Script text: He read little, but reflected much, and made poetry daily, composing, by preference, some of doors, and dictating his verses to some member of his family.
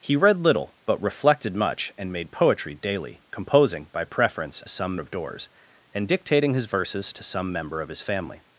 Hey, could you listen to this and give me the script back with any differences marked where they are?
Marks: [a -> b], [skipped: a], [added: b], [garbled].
He read little, but reflected much, and made poetry daily, composing, by preference, some of doors, and dictating his verses to some member of his family.